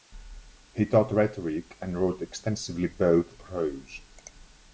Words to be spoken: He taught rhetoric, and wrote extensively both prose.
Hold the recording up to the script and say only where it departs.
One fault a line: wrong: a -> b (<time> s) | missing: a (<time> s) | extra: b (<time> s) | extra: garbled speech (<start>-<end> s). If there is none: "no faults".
no faults